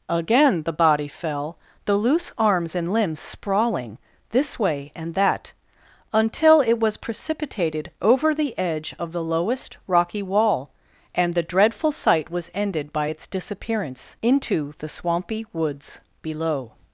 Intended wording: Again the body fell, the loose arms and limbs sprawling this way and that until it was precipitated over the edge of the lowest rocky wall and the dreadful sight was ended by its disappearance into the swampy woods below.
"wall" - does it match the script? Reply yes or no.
yes